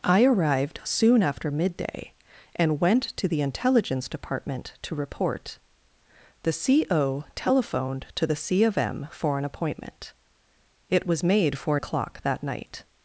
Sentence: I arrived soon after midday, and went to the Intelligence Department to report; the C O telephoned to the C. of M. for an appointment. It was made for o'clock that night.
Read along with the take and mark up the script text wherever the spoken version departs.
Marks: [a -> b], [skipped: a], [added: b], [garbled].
I arrived soon after midday, and went to the Intelligence Department to report; the C O telephoned to the C. of M. for an appointment. It was made for o'clock that night.